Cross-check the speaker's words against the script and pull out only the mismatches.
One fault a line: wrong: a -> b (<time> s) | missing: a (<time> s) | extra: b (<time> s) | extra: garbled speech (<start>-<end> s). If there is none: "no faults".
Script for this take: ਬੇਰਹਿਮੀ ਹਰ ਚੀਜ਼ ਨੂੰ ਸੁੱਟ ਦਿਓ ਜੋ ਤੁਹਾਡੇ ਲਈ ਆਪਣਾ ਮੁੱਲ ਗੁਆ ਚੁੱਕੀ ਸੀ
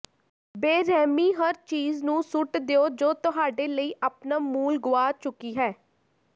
wrong: ਸੀ -> ਹੈ (5.6 s)